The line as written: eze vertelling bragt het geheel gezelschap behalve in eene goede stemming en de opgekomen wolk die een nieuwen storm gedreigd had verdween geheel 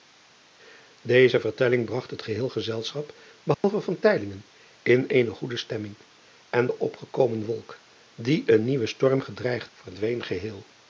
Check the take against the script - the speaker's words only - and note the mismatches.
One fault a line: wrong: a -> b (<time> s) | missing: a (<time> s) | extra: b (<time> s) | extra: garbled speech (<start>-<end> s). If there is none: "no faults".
missing: had (9.7 s)